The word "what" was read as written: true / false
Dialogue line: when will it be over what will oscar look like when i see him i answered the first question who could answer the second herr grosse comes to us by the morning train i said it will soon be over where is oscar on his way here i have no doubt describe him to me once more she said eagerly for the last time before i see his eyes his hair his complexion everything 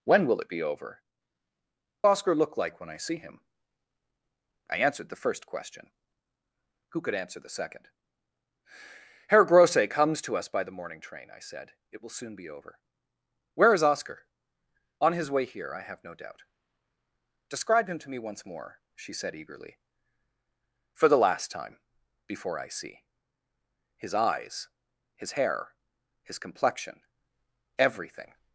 false